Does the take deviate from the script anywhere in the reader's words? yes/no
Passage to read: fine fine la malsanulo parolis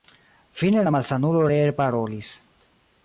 yes